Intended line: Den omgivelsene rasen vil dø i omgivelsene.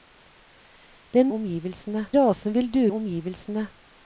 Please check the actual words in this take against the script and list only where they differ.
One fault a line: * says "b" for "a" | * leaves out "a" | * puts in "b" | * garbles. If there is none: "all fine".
all fine